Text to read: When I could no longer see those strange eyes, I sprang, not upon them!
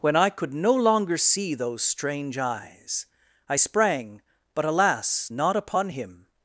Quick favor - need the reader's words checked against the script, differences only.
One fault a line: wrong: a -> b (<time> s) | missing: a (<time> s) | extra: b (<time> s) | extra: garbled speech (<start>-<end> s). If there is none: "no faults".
extra: but alas (4.5 s)
wrong: them -> him (5.9 s)